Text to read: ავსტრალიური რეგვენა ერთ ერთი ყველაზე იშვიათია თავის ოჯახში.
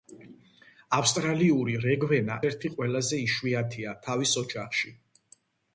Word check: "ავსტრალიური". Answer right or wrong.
right